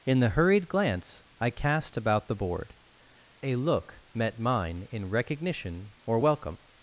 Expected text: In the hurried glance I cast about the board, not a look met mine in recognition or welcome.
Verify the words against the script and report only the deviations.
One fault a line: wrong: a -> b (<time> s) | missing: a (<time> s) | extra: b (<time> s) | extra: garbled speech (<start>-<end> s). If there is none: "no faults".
missing: not (2.7 s)